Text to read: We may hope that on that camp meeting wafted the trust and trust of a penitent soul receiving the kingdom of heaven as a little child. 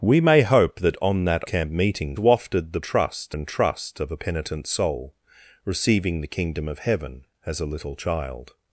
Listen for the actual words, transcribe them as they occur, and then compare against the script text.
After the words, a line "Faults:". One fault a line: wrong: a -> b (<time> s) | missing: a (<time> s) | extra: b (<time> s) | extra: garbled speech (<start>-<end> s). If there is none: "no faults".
We may hope that on that camp meeting wafted the trust and trust of a penitent soul receiving the kingdom of heaven as a little child.
Faults:
no faults